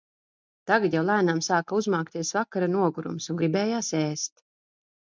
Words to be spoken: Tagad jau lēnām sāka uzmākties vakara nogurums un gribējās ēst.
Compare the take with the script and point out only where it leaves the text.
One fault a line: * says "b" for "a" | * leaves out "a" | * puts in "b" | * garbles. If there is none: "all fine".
all fine